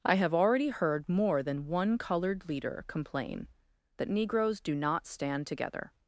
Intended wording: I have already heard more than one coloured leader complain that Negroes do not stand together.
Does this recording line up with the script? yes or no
yes